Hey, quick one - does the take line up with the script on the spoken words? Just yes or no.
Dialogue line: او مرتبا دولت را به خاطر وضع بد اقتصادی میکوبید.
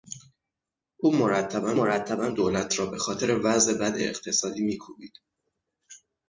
no